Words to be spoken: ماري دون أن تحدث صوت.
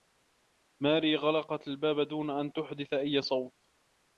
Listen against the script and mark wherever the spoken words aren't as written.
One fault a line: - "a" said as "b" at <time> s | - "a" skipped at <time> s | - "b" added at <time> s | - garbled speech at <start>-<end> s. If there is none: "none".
- "غلقت الباب" added at 1.1 s
- "أي" added at 2.9 s